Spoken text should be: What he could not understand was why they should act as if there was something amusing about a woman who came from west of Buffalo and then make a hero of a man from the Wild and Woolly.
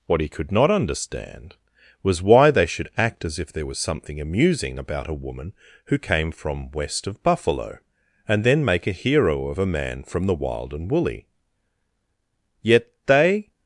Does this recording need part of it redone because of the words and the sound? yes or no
yes